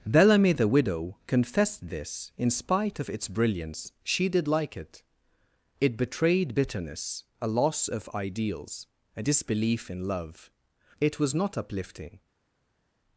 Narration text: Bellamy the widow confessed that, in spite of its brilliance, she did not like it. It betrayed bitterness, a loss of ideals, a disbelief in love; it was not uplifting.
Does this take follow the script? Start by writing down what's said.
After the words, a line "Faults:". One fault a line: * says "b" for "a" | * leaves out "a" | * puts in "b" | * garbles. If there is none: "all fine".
Bellamy the widow confessed this, in spite of its brilliance, she did like it. It betrayed bitterness, a loss of ideals, a disbelief in love; it was not uplifting.
Faults:
* says "this" for "that"
* leaves out "not"